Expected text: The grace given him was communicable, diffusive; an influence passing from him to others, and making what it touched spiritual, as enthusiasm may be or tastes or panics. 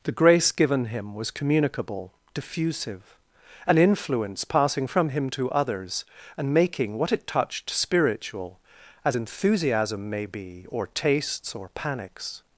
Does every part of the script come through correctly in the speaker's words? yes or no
yes